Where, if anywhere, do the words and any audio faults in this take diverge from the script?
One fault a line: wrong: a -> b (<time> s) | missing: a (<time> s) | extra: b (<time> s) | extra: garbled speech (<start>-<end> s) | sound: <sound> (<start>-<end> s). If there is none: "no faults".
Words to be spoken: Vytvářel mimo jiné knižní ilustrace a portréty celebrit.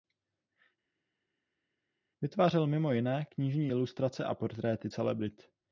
no faults